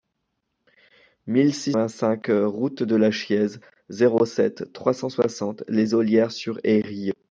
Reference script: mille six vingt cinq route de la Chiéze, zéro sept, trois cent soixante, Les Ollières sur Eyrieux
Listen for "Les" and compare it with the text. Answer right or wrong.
right